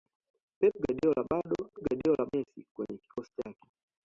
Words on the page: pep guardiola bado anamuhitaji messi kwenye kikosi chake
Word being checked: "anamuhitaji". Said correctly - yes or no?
no